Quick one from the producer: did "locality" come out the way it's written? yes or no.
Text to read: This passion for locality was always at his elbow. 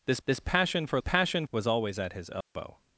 no